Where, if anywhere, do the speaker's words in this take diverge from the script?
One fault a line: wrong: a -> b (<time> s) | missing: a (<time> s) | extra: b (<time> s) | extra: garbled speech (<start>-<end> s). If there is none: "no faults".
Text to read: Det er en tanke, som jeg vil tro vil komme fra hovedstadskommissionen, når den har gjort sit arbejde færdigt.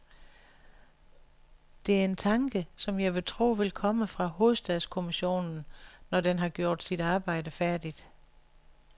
no faults